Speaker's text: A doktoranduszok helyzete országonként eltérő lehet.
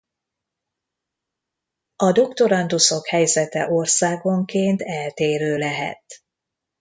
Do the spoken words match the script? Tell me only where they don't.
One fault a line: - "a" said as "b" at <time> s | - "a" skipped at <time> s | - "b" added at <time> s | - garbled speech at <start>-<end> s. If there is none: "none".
none